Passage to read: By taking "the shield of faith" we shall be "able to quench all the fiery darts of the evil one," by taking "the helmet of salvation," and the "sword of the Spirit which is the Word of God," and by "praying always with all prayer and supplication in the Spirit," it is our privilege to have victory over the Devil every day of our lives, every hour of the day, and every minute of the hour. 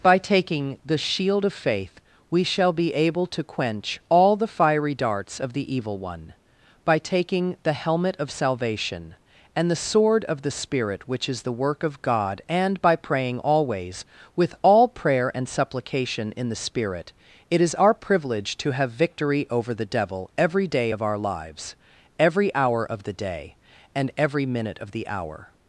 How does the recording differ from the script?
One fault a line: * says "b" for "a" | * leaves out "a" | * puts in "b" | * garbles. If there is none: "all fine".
* says "Work" for "Word"